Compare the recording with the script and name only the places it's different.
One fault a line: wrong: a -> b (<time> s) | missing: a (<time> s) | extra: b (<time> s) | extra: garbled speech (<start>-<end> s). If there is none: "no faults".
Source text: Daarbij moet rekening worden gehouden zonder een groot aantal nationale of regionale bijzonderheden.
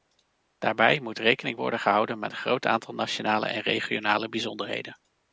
wrong: zonder -> met (2.2 s)
wrong: of -> en (3.5 s)